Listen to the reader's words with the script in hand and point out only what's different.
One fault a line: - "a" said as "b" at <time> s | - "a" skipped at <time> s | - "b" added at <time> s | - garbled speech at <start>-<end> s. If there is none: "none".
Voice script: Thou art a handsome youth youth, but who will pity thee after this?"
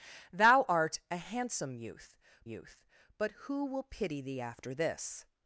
none